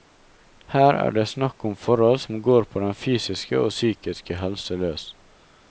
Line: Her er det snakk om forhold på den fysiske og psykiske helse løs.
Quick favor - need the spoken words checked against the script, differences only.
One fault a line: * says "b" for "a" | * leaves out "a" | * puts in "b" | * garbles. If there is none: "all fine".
* puts in "som går"